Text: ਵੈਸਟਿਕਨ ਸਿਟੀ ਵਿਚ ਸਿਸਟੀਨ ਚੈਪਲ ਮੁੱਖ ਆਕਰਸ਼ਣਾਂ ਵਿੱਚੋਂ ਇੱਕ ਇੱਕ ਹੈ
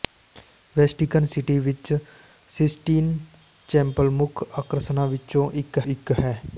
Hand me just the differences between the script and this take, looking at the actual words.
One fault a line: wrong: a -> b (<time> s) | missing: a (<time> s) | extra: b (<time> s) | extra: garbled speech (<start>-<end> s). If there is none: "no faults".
no faults